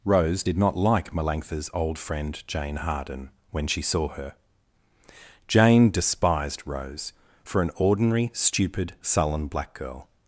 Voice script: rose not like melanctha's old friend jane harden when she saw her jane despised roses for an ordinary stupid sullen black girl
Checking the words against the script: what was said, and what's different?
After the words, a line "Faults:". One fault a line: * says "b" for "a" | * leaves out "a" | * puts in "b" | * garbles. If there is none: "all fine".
rose did not like melanctha's old friend jane harden when she saw her jane despised rose for an ordinary stupid sullen black girl
Faults:
* puts in "did"
* says "rose" for "roses"